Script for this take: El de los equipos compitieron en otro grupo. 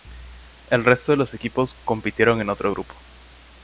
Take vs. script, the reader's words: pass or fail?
fail